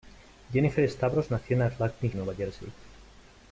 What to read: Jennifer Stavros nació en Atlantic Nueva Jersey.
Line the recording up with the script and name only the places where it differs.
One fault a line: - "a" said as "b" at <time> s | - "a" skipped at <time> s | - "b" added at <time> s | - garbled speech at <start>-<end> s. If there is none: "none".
none